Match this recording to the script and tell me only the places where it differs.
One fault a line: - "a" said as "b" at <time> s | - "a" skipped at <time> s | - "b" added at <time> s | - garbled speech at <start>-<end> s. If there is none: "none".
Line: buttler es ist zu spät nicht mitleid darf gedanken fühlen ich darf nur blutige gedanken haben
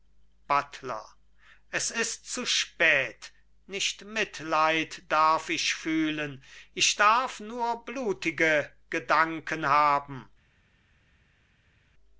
- "gedanken" said as "ich" at 5.5 s